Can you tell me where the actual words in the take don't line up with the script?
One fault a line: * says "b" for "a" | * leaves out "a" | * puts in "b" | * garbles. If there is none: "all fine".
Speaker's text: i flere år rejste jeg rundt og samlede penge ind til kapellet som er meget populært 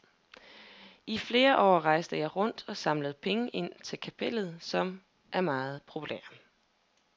all fine